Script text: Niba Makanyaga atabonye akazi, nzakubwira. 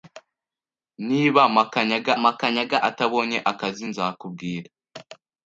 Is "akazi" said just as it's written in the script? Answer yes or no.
yes